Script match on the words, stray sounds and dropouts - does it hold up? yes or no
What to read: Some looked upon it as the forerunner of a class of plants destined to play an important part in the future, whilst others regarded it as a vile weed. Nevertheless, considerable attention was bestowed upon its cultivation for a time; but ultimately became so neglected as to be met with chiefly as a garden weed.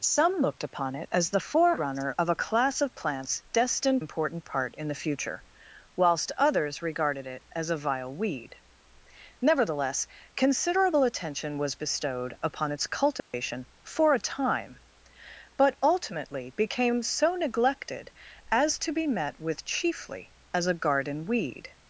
no